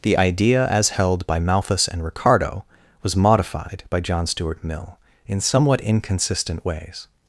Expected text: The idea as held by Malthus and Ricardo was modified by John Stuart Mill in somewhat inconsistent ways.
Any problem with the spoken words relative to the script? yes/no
no